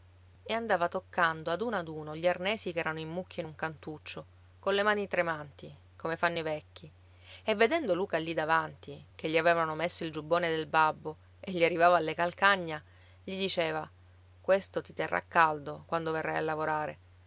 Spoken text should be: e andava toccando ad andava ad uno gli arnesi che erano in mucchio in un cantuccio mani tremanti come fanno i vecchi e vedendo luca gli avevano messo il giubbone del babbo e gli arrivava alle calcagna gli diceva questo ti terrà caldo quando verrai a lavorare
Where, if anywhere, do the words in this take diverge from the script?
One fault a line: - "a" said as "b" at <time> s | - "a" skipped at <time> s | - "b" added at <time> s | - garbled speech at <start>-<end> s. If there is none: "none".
- "andava" said as "uno" at 1.6 s
- "colle" added at 4.6 s
- "lì davanti che" added at 8.2 s